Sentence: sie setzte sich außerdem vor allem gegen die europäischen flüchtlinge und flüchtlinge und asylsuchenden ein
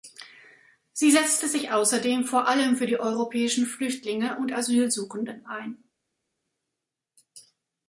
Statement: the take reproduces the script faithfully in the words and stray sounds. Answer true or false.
false